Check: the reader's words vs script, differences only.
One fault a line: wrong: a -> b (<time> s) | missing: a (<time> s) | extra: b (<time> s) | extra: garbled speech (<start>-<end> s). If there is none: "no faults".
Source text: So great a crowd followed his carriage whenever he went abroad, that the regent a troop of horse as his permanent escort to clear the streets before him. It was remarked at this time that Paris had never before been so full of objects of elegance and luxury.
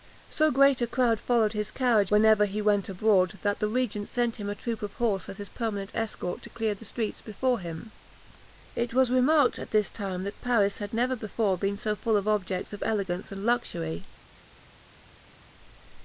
extra: sent him (4.1 s)